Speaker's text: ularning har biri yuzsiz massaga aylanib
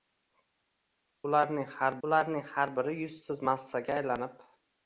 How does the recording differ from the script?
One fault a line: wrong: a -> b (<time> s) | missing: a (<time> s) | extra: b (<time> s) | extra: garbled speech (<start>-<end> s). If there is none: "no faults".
extra: ularning har (2.1 s)